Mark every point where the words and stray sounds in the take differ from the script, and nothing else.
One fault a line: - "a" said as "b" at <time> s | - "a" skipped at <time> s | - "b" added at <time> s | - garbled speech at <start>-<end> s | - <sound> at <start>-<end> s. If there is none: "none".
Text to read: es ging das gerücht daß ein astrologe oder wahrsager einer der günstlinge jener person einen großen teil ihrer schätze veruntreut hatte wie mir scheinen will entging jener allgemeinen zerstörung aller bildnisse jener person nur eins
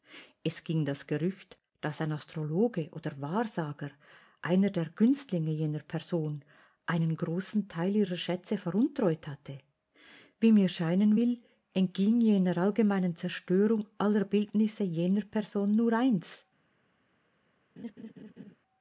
- laugh at 17.8-18.5 s